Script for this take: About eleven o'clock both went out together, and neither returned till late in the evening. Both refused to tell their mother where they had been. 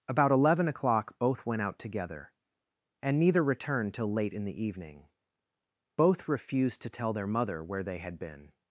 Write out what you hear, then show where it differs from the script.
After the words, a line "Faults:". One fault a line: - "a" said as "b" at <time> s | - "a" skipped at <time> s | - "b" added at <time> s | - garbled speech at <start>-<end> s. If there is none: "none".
About eleven o'clock both went out together, and neither returned till late in the evening. Both refused to tell their mother where they had been.
Faults:
none